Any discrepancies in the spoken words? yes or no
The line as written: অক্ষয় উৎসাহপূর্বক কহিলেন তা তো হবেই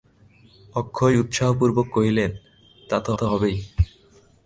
yes